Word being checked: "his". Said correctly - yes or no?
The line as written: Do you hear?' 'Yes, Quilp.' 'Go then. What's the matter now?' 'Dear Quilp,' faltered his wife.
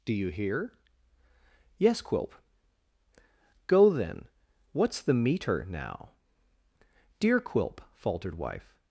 no